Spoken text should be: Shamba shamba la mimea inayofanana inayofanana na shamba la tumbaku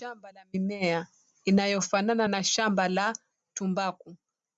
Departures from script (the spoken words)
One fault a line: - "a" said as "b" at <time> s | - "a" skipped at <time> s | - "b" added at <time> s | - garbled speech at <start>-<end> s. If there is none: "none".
- "shamba" skipped at 0.3 s
- "inayofanana" skipped at 2.3 s